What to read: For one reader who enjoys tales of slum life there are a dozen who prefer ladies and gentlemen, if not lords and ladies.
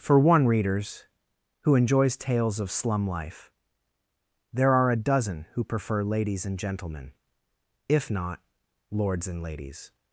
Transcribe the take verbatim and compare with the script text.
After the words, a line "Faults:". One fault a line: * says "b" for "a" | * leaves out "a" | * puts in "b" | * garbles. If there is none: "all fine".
For one readers who enjoys tales of slum life there are a dozen who prefer ladies and gentlemen, if not lords and ladies.
Faults:
* says "readers" for "reader"